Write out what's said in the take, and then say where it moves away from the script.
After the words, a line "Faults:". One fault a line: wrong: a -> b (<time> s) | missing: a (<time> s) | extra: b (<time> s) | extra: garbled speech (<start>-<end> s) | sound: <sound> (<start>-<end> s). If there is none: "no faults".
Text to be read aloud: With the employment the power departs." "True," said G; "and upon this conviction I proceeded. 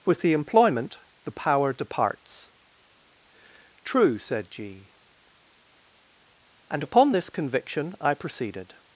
With the employment the power departs." "True," said G; "and upon this conviction I proceeded.
Faults:
no faults